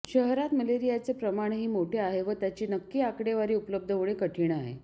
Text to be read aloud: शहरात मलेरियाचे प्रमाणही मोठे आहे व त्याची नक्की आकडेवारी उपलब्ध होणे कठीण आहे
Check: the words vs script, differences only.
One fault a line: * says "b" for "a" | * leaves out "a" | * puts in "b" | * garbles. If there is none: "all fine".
all fine